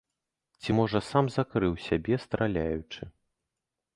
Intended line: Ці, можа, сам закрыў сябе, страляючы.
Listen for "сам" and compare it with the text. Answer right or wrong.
right